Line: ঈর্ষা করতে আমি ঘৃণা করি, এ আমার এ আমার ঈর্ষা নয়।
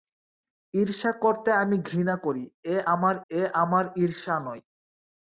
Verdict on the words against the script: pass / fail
pass